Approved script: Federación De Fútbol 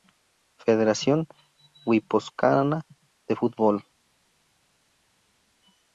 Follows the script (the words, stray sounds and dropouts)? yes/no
no